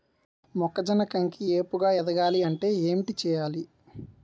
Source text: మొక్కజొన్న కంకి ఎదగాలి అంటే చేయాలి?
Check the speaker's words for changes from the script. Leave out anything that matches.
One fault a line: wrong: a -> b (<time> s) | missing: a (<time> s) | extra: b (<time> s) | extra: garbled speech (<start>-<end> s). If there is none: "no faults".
extra: ఏపుగ (1.5 s)
extra: ఏంటి (2.8 s)